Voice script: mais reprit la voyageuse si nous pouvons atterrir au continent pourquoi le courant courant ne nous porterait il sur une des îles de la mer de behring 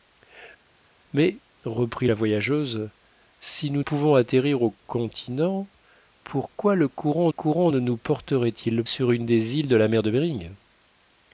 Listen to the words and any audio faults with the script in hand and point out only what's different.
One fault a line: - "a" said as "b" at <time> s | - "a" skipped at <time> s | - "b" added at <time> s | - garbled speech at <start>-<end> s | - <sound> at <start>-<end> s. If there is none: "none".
none